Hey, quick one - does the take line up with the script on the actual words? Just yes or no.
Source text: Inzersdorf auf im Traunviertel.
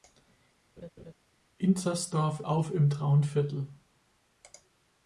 yes